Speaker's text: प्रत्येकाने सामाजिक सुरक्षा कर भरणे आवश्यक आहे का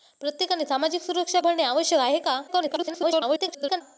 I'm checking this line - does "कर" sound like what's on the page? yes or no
no